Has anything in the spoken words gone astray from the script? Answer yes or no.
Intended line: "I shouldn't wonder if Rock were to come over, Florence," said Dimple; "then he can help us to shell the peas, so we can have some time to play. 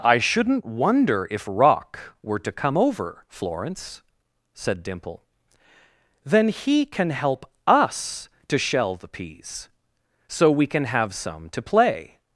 yes